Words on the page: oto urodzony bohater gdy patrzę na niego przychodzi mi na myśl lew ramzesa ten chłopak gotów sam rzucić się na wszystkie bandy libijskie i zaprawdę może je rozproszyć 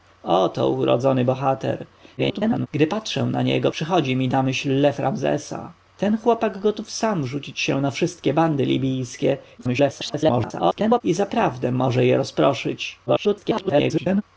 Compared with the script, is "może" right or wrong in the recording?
right